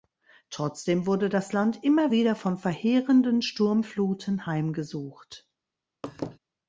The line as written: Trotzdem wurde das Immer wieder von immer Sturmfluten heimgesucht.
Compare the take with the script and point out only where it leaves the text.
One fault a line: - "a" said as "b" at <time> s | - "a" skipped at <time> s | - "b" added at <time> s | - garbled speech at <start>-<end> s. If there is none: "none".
- "Land" added at 1.5 s
- "immer" said as "verheerenden" at 2.6 s